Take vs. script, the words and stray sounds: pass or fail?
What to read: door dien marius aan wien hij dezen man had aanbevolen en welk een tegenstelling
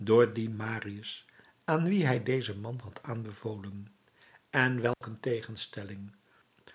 fail